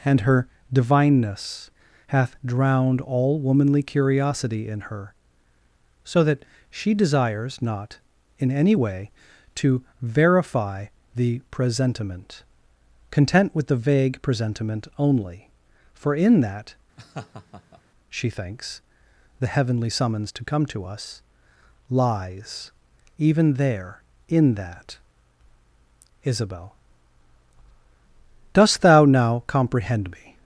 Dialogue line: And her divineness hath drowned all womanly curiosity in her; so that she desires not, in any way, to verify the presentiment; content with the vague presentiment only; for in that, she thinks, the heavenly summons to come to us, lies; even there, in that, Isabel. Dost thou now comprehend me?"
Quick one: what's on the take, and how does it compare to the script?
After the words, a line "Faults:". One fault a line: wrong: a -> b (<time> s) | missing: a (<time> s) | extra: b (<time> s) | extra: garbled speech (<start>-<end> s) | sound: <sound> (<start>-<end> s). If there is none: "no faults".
And her divineness hath drowned all womanly curiosity in her; so that she desires not, in any way, to verify the presentiment; content with the vague presentiment only; for in that, she thinks, the heavenly summons to come to us, lies; even there, in that, Isabel. Dost thou now comprehend me?"
Faults:
sound: laugh (17.0-17.8 s)